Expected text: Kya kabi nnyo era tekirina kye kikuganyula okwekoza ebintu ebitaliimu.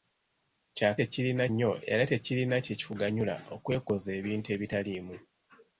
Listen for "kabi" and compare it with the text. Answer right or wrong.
wrong